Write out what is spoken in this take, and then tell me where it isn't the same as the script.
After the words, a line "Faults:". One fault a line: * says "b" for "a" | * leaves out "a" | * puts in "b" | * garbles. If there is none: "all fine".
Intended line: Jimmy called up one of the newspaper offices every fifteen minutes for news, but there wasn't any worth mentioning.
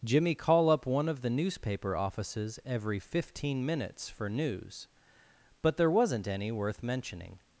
Jimmy call up one of the newspaper offices every fifteen minutes for news, but there wasn't any worth mentioning.
Faults:
* says "call" for "called"